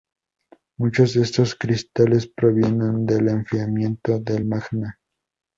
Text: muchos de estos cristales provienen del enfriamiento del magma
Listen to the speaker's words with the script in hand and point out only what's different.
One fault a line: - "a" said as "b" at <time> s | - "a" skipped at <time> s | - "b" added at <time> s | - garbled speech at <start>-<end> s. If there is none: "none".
none